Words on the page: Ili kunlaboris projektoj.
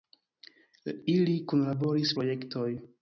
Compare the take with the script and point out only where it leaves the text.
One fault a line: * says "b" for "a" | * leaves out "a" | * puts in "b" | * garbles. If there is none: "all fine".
all fine